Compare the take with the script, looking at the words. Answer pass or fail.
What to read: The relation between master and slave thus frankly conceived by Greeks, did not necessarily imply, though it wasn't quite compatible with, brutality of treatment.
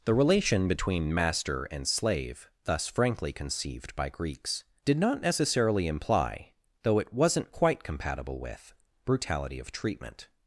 pass